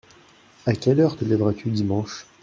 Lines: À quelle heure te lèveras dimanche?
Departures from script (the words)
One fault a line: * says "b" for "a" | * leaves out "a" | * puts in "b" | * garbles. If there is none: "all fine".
* puts in "tu"